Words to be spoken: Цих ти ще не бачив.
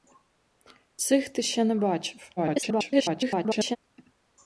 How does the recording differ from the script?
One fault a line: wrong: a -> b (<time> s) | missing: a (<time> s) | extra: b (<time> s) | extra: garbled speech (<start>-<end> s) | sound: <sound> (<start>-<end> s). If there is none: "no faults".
extra: garbled speech (2.4-3.8 s)